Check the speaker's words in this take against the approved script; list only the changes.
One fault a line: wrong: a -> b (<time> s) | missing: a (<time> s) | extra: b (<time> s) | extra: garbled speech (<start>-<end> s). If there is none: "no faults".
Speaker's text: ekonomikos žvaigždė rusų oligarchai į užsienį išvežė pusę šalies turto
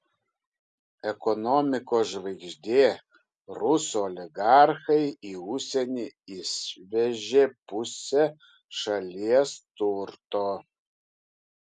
no faults